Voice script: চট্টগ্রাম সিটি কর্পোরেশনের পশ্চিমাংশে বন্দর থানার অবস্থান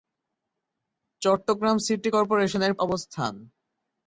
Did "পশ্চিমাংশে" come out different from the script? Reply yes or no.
yes